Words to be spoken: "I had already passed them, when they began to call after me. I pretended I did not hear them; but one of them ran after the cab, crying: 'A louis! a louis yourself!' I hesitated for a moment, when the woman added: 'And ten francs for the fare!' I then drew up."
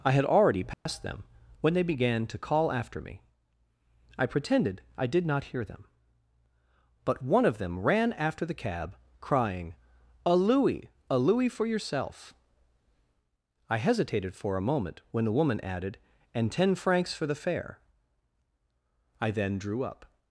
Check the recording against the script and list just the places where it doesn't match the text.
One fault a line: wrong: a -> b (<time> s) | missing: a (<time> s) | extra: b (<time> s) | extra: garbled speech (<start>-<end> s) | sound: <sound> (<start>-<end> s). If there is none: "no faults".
sound: dropout (0.7-0.9 s)
extra: for (11.5 s)